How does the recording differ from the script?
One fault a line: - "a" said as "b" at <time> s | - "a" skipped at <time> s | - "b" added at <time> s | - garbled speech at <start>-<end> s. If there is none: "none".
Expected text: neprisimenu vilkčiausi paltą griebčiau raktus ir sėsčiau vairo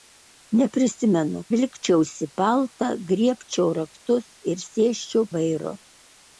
none